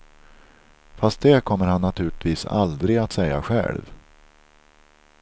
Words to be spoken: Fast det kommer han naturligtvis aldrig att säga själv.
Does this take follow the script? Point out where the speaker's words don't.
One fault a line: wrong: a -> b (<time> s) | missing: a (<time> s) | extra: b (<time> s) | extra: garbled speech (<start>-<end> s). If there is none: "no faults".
no faults